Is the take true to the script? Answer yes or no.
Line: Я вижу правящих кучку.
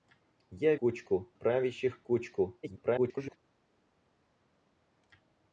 no